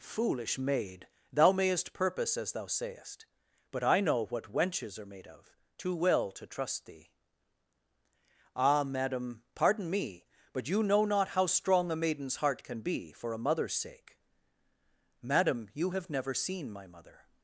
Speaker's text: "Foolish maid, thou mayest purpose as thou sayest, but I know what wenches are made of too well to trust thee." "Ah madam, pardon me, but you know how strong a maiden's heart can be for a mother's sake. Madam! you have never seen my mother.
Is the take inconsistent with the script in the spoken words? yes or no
yes